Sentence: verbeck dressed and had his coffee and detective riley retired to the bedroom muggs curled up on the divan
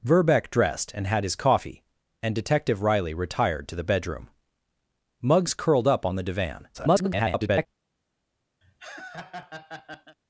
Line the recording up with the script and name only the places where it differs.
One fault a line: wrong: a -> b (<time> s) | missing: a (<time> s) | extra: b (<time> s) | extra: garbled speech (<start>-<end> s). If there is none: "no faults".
extra: garbled speech (6.7-7.7 s)